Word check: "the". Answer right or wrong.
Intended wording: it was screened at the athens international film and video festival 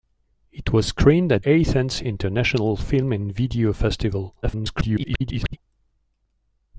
wrong